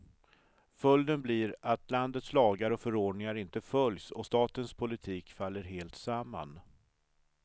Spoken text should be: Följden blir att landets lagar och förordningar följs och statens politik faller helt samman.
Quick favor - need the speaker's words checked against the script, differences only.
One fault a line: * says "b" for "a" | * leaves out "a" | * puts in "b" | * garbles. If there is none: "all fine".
* puts in "inte"